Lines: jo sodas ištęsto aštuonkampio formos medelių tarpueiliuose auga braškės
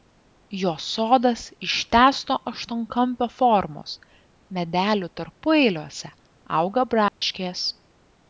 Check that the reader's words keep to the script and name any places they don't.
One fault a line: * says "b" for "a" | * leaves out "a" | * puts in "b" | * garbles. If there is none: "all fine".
all fine